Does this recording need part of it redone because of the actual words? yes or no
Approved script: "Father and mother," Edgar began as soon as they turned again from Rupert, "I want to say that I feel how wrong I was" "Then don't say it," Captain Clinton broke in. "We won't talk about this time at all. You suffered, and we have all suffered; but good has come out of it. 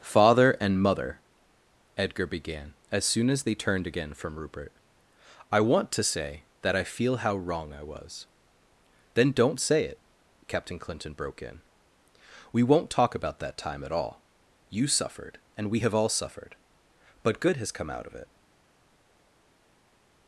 yes